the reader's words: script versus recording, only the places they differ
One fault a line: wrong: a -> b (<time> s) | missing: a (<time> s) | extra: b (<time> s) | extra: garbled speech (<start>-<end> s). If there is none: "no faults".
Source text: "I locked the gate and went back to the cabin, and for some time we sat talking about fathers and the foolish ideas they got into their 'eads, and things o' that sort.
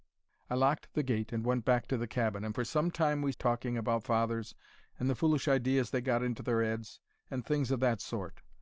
missing: sat (3.3 s)